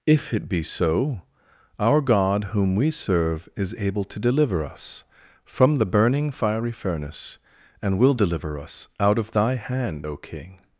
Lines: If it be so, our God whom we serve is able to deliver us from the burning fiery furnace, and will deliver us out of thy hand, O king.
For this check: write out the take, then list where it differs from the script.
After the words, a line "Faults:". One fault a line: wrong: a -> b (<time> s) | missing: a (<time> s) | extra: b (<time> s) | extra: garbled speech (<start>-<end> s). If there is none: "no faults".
If it be so, our God whom we serve is able to deliver us from the burning fiery furnace, and will deliver us out of thy hand, O king.
Faults:
no faults